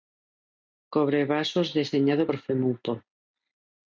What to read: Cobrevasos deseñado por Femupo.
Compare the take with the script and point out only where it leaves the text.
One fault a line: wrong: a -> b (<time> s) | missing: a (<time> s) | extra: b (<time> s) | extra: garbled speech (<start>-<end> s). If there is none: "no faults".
no faults